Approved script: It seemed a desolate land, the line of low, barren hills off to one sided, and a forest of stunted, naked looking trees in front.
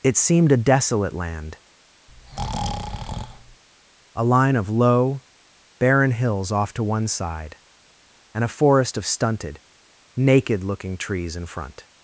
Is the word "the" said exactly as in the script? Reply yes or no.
no